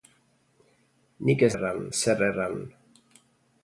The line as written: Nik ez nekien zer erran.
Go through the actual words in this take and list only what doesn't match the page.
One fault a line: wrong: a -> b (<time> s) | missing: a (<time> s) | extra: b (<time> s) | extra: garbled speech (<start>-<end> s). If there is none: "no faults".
wrong: nekien -> erran (1.5 s)